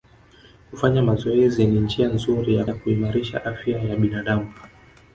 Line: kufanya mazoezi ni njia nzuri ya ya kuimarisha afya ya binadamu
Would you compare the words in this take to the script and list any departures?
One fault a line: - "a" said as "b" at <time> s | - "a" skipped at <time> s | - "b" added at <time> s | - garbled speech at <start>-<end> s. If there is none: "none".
none